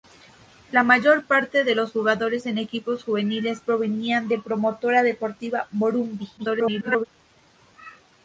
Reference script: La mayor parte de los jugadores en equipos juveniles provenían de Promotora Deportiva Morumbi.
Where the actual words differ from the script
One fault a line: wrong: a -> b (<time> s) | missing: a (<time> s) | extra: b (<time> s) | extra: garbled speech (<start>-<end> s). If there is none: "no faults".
extra: garbled speech (6.4-7.1 s)